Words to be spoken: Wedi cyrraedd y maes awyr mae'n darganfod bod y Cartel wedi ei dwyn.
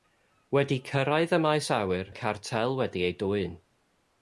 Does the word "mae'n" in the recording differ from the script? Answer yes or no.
yes